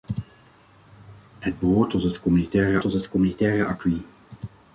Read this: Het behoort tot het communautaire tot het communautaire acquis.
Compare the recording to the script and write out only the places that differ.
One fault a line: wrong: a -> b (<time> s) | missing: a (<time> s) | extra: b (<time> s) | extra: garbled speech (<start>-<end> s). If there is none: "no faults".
no faults